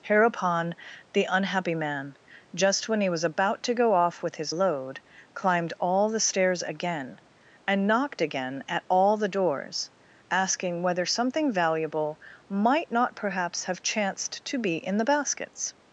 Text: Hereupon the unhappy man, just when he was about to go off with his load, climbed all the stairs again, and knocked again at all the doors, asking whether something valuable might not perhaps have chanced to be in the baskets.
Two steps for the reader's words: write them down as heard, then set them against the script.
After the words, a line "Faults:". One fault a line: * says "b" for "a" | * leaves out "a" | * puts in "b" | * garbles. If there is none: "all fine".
Hereupon the unhappy man, just when he was about to go off with his load, climbed all the stairs again, and knocked again at all the doors, asking whether something valuable might not perhaps have chanced to be in the baskets.
Faults:
all fine